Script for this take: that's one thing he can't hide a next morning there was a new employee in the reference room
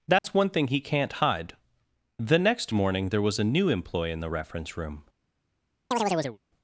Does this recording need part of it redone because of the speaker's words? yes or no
yes